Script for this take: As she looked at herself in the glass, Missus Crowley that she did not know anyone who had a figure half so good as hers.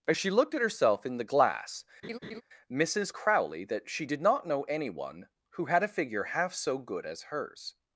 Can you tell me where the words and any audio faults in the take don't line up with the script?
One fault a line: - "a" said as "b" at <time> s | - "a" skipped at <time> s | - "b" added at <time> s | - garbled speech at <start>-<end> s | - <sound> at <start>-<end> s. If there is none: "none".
- laugh at 2.0-2.4 s